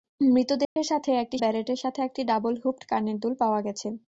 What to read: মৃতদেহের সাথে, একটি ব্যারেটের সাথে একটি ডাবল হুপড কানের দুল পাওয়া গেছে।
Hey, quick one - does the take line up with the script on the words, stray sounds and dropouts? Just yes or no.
no